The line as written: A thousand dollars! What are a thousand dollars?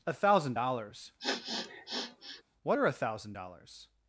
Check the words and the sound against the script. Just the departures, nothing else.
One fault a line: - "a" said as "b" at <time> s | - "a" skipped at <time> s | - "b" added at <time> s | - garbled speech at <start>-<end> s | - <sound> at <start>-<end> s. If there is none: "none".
- sniff at 1.2-2.4 s